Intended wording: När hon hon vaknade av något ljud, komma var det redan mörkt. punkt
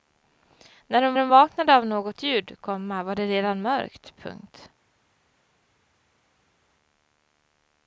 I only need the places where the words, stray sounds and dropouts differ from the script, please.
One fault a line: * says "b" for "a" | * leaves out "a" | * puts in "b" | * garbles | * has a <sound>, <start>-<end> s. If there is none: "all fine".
all fine